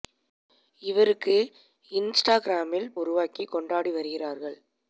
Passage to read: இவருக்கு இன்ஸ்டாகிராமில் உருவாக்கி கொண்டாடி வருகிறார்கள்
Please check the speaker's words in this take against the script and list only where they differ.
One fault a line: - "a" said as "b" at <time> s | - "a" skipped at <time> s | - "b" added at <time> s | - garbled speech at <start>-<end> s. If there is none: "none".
none